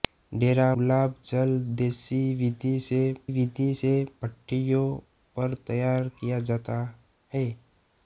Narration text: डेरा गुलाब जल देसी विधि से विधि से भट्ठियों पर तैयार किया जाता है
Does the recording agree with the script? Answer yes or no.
yes